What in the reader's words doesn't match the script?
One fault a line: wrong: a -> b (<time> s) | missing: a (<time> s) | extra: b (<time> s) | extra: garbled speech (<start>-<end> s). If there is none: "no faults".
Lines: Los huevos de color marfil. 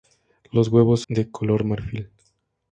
no faults